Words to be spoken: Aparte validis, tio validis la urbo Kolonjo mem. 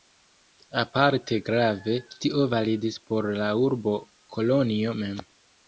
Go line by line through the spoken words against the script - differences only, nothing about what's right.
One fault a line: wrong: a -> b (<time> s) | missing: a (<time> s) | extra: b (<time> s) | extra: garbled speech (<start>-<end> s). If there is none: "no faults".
wrong: validis -> grave (1.5 s)
extra: por (3.1 s)